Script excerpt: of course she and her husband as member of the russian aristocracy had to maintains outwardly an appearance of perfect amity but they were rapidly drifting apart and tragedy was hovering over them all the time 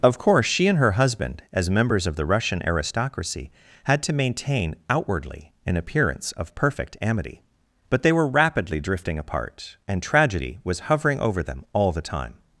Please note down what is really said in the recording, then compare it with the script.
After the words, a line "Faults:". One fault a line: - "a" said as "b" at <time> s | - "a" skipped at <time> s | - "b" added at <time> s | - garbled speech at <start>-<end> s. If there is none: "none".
of course she and her husband as members of the russian aristocracy had to maintain outwardly an appearance of perfect amity but they were rapidly drifting apart and tragedy was hovering over them all the time
Faults:
- "member" said as "members" at 1.7 s
- "maintains" said as "maintain" at 4.1 s